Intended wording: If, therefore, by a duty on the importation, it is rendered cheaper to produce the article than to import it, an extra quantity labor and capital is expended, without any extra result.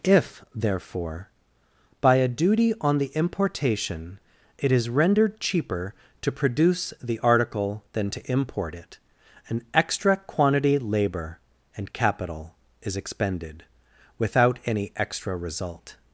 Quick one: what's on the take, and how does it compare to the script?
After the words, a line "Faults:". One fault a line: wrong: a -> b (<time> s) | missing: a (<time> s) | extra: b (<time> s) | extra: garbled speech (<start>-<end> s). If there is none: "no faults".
If, therefore, by a duty on the importation, it is rendered cheaper to produce the article than to import it, an extra quantity labor and capital is expended, without any extra result.
Faults:
no faults